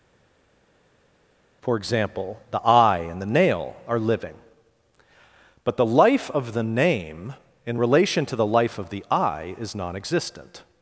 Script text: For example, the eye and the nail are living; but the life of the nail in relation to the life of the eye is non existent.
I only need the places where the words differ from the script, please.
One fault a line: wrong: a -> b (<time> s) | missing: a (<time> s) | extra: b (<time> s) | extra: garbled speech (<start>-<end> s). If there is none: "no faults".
wrong: nail -> name (6.6 s)